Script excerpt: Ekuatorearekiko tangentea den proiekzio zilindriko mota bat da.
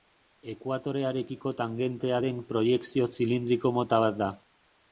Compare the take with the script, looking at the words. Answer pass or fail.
pass